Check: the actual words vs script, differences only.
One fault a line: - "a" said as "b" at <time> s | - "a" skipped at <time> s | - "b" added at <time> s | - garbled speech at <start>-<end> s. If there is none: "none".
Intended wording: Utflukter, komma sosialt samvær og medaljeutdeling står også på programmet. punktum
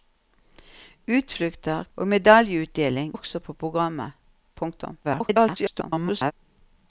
- "komma sosialt samvær" skipped at 1.8 s
- "står" skipped at 3.1 s
- garbled speech at 5.0-6.3 s